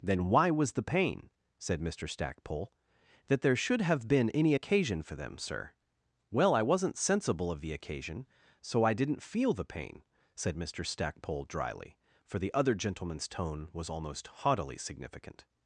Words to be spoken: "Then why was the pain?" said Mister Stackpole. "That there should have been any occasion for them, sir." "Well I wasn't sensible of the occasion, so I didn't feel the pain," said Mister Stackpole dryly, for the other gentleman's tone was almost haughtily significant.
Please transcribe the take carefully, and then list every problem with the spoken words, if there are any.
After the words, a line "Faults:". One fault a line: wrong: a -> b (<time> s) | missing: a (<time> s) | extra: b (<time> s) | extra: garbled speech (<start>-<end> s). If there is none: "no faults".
"Then why was the pain?" said Mister Stackpole. "That there should have been any occasion for them, sir." "Well I wasn't sensible of the occasion, so I didn't feel the pain," said Mister Stackpole dryly, for the other gentleman's tone was almost haughtily significant.
Faults:
no faults